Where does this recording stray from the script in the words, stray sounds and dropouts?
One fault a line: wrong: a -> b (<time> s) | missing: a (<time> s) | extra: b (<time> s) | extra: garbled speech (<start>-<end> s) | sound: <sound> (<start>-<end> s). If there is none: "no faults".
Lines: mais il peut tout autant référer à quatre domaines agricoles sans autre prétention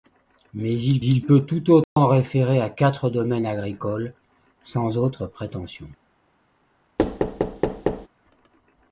extra: il (1.0 s)
sound: dropout (1.8-2.0 s)
sound: thud (7.0-8.1 s)